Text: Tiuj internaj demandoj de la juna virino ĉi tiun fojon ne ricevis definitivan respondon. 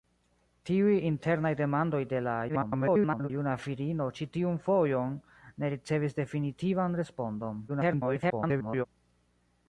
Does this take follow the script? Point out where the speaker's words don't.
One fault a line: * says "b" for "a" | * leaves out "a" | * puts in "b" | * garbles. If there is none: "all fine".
* garbles
* garbles